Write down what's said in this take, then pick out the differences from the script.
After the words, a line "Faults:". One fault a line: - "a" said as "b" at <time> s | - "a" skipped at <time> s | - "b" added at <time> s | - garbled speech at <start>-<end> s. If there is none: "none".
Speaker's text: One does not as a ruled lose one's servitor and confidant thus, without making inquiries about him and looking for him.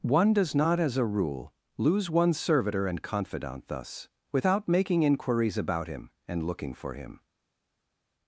One does not as a rule lose one's servitor and confidant thus, without making inquiries about him and looking for him.
Faults:
- "ruled" said as "rule" at 1.1 s